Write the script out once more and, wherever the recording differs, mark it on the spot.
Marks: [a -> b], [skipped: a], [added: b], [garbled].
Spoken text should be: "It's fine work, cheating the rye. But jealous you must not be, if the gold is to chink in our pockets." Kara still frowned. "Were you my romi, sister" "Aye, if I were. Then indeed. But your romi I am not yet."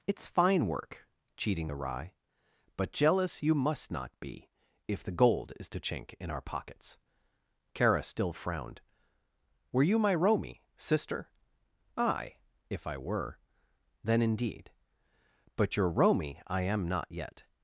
"It's fine work, cheating the rye. But jealous you must not be, if the gold is to chink in our pockets." Kara still frowned. "Were you my romi, sister" "Aye, if I were. Then indeed. But your romi I am not yet."